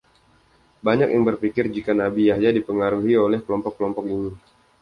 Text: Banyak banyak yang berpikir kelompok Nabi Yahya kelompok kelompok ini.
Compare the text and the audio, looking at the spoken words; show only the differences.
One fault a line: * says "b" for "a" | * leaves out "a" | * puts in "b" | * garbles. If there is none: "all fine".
* leaves out "banyak"
* says "jika" for "kelompok"
* puts in "dipengaruhi oleh"